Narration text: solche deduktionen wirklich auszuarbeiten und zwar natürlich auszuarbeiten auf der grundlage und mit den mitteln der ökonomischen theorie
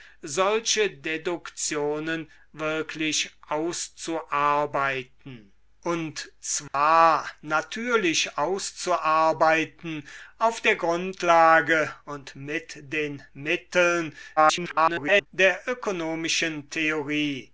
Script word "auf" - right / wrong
right